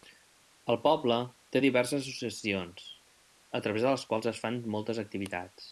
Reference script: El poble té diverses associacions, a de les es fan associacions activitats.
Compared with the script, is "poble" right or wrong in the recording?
right